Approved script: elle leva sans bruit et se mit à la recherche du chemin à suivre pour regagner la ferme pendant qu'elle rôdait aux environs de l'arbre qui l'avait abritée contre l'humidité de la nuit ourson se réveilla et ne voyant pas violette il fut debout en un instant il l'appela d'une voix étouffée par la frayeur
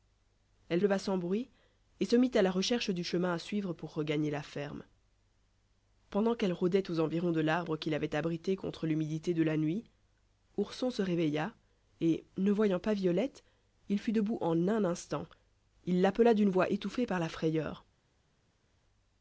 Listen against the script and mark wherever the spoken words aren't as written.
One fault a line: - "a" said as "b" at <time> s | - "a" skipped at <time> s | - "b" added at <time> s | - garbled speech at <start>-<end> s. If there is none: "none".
none